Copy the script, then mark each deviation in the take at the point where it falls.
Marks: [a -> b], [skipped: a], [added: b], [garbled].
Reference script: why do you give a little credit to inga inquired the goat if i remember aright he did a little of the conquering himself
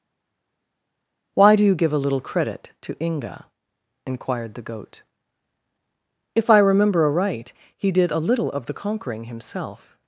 why do you give a little credit to inga inquired the goat if i remember aright he did a little of the conquering himself